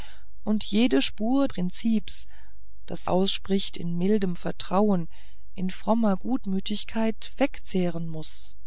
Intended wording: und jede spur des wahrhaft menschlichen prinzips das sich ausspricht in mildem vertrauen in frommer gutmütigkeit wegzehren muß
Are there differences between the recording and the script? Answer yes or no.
yes